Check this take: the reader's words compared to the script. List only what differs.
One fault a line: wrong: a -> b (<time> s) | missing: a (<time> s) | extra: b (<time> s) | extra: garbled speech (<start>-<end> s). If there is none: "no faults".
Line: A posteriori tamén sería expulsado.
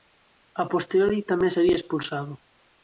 no faults